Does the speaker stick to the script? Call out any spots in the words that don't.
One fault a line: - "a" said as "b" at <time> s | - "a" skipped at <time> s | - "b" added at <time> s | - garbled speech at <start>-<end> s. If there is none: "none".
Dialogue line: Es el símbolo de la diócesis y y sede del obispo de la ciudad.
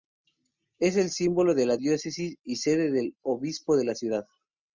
- "y" skipped at 2.6 s